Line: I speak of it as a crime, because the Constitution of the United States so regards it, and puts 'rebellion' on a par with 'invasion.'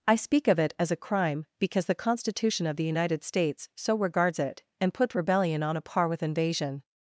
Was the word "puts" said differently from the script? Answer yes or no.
yes